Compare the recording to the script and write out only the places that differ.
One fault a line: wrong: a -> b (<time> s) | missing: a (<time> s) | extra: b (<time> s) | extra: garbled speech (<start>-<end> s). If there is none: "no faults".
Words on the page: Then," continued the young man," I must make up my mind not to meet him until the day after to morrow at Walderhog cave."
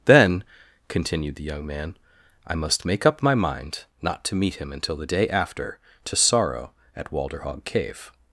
wrong: morrow -> sorrow (6.2 s)